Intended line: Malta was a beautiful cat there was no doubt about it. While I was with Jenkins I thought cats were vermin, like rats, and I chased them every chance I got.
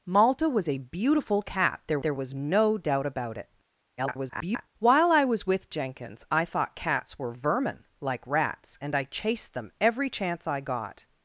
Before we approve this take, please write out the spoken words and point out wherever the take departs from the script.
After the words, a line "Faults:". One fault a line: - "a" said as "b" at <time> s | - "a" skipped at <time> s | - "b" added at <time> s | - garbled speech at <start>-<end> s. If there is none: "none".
Malta was a beautiful cat there there was no doubt about it. [garbled] While I was with Jenkins I thought cats were vermin, like rats, and I chased them every chance I got.
Faults:
- "there" added at 2.0 s
- garbled speech at 4.0-4.7 s